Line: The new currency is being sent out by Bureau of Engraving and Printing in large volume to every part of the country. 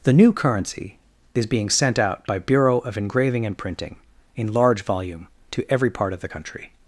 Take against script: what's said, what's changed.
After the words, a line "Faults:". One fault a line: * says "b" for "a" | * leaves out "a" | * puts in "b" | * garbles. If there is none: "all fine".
The new currency is being sent out by Bureau of Engraving and Printing in large volume to every part of the country.
Faults:
all fine